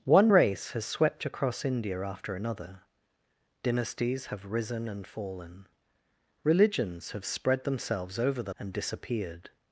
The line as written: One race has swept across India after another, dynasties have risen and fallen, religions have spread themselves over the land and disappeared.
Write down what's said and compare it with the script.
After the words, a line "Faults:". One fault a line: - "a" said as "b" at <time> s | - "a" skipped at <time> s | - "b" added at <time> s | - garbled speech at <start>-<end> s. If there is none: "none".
One race has swept across India after another, dynasties have risen and fallen, religions have spread themselves over the and disappeared.
Faults:
- "land" skipped at 8.5 s